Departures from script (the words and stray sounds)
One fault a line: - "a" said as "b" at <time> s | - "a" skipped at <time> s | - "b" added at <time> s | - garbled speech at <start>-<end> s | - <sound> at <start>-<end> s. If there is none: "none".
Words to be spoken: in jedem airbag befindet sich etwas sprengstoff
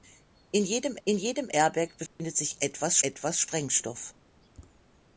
- "in jedem" added at 1.0 s
- dropout at 2.1-2.2 s
- "etwas" added at 3.0 s